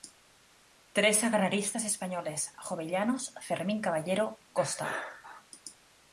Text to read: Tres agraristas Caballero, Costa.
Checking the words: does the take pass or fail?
fail